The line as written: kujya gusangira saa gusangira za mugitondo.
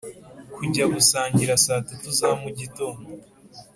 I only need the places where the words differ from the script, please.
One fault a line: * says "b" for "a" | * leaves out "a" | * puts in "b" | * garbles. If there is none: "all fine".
* says "tatu" for "gusangira"